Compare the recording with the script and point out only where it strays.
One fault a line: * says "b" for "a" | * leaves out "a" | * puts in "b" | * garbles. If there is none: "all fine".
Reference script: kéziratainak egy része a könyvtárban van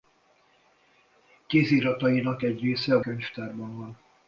all fine